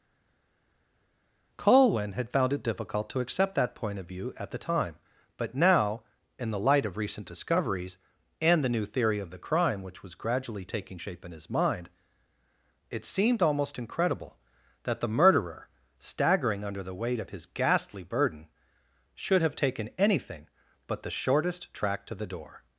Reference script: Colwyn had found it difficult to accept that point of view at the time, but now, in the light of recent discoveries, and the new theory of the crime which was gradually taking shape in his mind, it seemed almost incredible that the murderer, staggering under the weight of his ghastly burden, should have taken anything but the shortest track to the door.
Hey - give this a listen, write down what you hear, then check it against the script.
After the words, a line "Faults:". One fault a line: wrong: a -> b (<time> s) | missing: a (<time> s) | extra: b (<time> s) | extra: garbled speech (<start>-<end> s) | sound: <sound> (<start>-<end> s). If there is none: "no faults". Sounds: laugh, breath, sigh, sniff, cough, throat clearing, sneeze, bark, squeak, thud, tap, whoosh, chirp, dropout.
Colwyn had found it difficult to accept that point of view at the time, but now, in the light of recent discoveries, and the new theory of the crime which was gradually taking shape in his mind, it seemed almost incredible that the murderer, staggering under the weight of his ghastly burden, should have taken anything but the shortest track to the door.
Faults:
no faults